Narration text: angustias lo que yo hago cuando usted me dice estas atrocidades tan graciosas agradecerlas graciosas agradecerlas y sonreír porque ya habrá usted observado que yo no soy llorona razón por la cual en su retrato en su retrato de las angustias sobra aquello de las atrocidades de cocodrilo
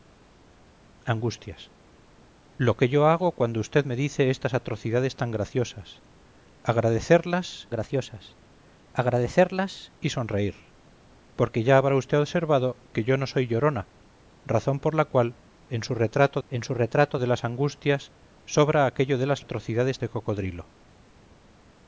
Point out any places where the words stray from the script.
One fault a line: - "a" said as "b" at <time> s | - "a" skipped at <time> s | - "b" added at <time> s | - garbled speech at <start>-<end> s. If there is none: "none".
none